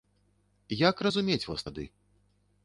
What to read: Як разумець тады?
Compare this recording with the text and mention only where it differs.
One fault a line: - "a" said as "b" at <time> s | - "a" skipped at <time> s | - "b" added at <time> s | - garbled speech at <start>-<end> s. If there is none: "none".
- "вас" added at 1.5 s